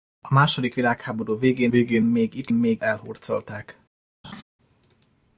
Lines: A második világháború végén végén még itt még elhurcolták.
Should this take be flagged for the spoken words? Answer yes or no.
no